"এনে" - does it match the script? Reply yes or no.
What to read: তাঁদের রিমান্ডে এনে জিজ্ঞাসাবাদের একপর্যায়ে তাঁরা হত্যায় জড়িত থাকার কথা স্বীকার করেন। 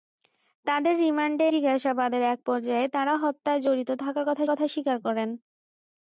no